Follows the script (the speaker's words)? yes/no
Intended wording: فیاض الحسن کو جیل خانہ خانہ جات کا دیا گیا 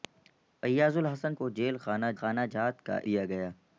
yes